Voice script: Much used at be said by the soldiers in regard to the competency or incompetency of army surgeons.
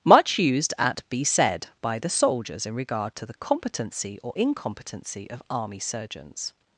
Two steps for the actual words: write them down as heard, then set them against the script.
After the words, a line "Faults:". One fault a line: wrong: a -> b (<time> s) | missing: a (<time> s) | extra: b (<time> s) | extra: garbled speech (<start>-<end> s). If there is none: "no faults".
Much used at be said by the soldiers in regard to the competency or incompetency of army surgeons.
Faults:
no faults